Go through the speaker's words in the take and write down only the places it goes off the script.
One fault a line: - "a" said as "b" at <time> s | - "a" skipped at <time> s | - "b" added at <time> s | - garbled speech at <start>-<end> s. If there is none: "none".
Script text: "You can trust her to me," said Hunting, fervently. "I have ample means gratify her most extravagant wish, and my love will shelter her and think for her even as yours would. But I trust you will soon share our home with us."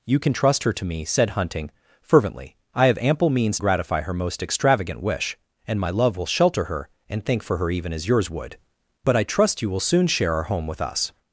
none